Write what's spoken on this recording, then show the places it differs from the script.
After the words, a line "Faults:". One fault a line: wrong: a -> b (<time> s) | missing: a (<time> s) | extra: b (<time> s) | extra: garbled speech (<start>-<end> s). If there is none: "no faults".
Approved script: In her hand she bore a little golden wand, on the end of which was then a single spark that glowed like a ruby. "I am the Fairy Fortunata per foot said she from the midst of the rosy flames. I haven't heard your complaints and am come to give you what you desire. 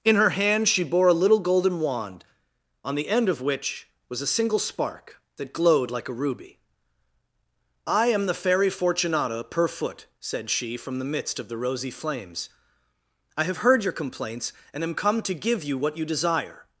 In her hand she bore a little golden wand, on the end of which was a single spark that glowed like a ruby. "I am the Fairy Fortunata per foot said she from the midst of the rosy flames. I have heard your complaints and am come to give you what you desire.
Faults:
missing: then (4.2 s)
wrong: haven't -> have (13.4 s)